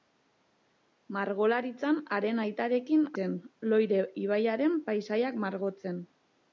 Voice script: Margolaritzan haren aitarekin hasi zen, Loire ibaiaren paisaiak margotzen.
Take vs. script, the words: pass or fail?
fail